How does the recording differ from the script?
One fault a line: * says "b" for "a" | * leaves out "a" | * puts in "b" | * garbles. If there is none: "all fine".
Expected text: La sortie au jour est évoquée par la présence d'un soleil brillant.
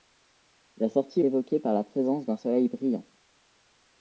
* leaves out "au jour est"